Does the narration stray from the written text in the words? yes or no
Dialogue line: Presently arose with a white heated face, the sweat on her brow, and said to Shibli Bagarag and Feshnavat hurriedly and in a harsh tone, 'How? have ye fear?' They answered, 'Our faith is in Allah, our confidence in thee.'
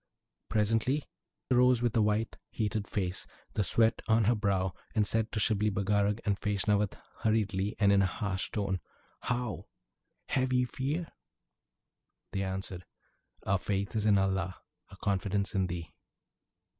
no